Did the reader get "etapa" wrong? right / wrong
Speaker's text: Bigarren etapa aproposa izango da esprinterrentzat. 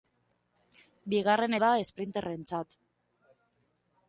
wrong